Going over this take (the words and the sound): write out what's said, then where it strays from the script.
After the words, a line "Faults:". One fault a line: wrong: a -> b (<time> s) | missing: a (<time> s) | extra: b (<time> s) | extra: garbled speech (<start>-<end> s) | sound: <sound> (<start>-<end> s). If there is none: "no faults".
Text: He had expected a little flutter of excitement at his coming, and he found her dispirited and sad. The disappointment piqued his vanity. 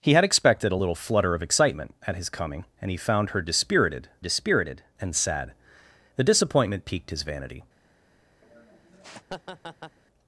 He had expected a little flutter of excitement at his coming, and he found her dispirited dispirited and sad. The disappointment piqued his vanity.
Faults:
extra: dispirited (4.2 s)
sound: laugh (8.4-10.0 s)